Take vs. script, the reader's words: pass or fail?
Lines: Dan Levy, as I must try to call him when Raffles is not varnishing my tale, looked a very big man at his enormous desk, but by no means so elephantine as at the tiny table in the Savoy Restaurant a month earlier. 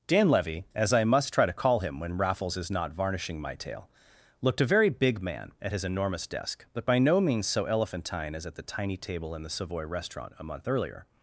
pass